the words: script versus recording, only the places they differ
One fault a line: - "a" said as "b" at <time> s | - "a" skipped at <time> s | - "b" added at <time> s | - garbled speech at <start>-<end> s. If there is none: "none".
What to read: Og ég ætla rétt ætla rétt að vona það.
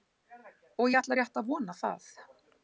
- "ætla rétt" skipped at 1.4 s